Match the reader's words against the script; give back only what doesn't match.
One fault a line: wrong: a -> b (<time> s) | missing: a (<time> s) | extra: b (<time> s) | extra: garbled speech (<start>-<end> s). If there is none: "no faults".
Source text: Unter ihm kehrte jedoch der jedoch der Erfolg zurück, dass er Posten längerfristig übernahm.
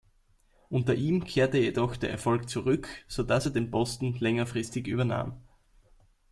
missing: jedoch der (2.1 s)
extra: so (3.1 s)
extra: den (3.5 s)